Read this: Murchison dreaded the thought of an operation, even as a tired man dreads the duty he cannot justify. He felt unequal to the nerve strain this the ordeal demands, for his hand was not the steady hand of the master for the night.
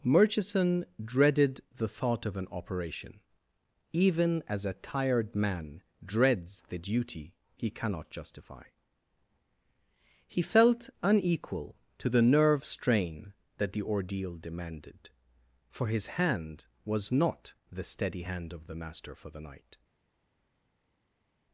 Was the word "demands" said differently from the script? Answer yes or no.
yes